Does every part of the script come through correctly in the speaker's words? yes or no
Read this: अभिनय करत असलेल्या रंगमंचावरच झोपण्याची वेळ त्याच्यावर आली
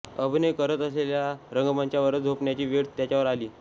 yes